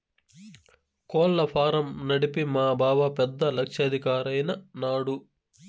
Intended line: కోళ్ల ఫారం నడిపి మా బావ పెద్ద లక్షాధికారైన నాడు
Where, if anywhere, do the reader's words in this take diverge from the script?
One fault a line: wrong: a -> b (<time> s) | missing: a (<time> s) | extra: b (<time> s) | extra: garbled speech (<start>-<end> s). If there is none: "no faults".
no faults